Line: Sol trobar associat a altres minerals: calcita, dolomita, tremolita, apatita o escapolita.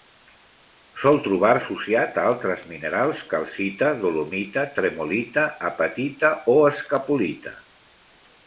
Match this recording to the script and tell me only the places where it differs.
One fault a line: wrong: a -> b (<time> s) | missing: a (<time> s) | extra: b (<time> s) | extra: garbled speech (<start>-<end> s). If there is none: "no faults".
no faults